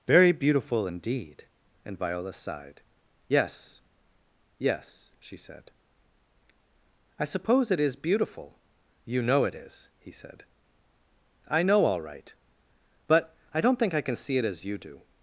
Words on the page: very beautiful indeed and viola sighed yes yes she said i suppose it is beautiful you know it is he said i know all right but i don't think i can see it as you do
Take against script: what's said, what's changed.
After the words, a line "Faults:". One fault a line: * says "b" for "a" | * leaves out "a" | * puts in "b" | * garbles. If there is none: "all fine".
very beautiful indeed and viola sighed yes yes she said i suppose it is beautiful you know it is he said i know all right but i don't think i can see it as you do
Faults:
all fine